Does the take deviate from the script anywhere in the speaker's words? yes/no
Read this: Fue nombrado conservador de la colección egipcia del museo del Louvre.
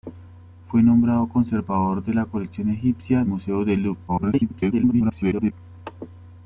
yes